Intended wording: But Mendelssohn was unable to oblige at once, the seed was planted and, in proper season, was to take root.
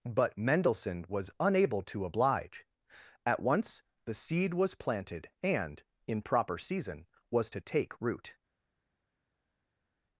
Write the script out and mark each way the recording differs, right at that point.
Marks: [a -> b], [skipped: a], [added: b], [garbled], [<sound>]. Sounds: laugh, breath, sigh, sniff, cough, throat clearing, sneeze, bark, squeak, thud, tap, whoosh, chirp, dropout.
But Mendelssohn was unable to oblige at once, the seed was planted and, in proper season, was to take root.